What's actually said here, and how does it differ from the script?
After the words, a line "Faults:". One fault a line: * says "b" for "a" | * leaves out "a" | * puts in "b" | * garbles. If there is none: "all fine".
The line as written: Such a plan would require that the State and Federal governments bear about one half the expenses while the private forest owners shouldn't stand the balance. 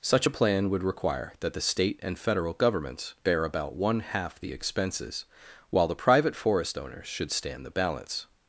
Such a plan would require that the State and Federal governments bear about one half the expenses while the private forest owners should stand the balance.
Faults:
* says "should" for "shouldn't"